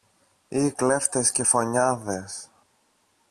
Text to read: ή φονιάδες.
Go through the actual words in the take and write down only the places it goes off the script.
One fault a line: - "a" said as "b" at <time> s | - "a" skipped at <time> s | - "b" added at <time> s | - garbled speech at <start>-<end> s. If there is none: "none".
- "κλέφτες και" added at 0.7 s